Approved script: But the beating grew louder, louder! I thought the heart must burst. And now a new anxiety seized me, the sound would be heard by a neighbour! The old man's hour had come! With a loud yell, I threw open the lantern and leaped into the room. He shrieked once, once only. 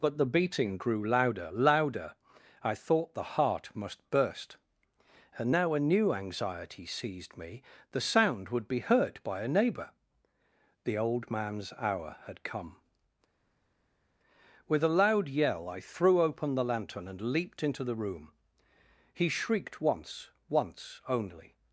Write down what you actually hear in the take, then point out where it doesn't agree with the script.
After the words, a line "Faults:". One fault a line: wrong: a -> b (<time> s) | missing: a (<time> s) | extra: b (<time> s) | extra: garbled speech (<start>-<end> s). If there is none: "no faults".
But the beating grew louder, louder! I thought the heart must burst. And now a new anxiety seized me, the sound would be heard by a neighbour! The old man's hour had come! With a loud yell, I threw open the lantern and leaped into the room. He shrieked once, once only.
Faults:
no faults